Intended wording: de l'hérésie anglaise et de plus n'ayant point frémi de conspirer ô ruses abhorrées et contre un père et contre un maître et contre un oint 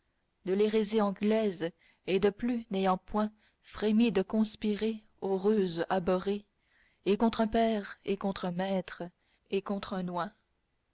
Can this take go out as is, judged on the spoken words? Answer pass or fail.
pass